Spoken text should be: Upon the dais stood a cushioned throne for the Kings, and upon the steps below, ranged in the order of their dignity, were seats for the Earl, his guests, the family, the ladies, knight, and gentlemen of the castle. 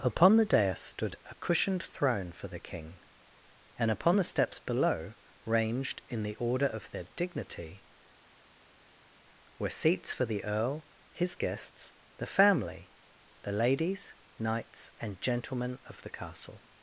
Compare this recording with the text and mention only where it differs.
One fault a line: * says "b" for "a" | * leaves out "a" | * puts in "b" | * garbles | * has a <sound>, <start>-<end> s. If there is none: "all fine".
* says "King" for "Kings"
* says "knights" for "knight"